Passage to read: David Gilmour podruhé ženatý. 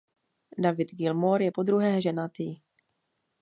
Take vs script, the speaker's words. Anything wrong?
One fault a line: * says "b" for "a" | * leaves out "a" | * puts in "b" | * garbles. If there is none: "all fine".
* puts in "je"